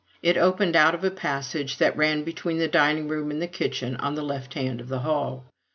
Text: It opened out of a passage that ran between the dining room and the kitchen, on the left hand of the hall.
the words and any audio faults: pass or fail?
pass